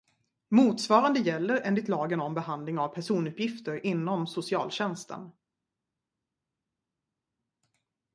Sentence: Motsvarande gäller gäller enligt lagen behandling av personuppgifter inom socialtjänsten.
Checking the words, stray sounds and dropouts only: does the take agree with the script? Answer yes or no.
no